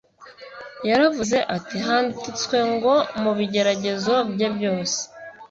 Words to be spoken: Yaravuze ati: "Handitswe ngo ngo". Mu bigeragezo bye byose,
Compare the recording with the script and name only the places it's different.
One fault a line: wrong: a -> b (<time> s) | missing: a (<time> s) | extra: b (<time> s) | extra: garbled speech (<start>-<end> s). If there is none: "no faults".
missing: ngo (2.9 s)